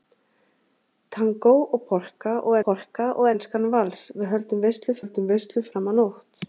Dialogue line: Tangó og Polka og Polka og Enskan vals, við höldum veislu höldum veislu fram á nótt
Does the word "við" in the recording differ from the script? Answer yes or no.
no